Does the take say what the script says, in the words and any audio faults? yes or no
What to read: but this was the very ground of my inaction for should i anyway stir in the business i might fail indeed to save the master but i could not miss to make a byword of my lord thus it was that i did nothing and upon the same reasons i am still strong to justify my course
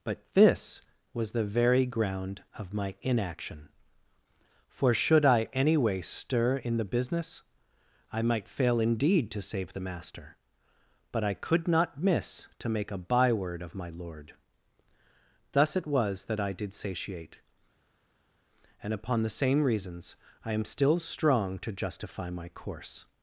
no